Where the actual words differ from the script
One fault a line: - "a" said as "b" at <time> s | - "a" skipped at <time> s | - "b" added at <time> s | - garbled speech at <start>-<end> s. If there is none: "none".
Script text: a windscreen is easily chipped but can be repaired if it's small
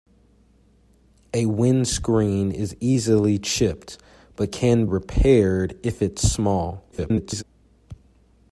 - "be" skipped at 4.9 s
- garbled speech at 6.9-7.4 s